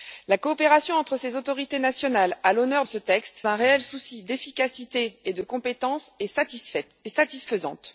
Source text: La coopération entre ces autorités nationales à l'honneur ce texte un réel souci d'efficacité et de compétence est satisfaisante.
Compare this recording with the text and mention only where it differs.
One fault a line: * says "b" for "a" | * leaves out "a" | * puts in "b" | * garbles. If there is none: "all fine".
all fine